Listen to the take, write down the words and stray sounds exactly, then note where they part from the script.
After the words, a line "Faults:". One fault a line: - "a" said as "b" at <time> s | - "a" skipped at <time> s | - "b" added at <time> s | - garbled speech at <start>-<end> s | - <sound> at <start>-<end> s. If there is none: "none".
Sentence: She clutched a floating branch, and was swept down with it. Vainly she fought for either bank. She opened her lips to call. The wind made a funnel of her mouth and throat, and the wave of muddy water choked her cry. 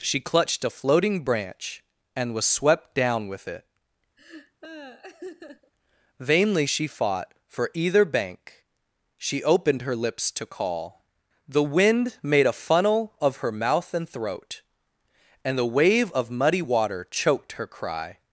She clutched a floating branch, and was swept down with it. Vainly she fought for either bank. She opened her lips to call. The wind made a funnel of her mouth and throat, and the wave of muddy water choked her cry.
Faults:
- laugh at 4.2-5.7 s